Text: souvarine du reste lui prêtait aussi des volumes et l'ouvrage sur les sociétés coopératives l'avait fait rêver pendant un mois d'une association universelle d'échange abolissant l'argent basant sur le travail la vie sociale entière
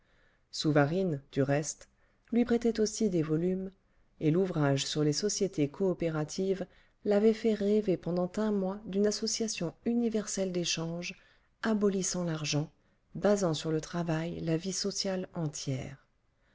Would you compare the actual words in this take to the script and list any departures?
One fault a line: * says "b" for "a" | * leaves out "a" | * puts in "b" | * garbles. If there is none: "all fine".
all fine